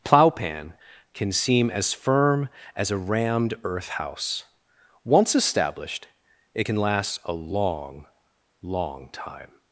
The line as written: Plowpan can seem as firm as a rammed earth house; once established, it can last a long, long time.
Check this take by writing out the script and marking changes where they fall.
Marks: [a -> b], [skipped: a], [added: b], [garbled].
Plowpan can seem as firm as a rammed earth house; once established, it can last a long, long time.